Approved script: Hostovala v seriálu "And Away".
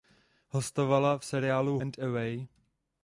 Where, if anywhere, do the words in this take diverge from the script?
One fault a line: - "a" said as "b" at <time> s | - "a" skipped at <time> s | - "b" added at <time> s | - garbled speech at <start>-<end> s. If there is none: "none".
none